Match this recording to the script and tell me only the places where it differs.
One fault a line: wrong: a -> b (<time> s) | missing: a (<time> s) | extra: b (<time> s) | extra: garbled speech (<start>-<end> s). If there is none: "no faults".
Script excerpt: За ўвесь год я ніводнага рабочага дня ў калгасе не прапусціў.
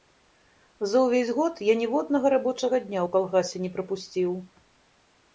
no faults